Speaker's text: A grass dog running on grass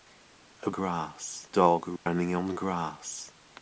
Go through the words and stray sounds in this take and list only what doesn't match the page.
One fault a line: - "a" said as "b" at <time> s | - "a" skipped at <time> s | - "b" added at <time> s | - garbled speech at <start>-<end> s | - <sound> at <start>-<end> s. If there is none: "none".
- dropout at 2.0-2.1 s